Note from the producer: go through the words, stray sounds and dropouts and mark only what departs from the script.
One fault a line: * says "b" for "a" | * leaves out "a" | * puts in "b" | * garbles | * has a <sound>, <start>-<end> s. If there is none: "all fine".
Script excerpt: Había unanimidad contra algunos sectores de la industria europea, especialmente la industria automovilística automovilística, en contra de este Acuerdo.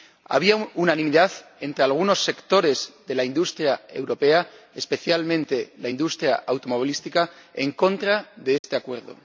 * says "entre" for "contra"
* leaves out "automovilística"
* has a dropout, 8.6-8.6 s